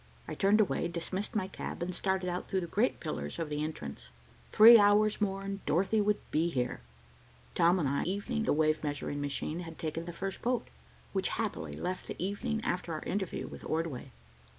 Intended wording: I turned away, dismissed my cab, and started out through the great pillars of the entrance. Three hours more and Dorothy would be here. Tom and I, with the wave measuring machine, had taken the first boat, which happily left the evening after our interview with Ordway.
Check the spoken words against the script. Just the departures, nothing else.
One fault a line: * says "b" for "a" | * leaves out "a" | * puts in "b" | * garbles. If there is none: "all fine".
* says "evening" for "with"